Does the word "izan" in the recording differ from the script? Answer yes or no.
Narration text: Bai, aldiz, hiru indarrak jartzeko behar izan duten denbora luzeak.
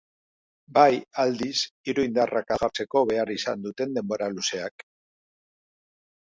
no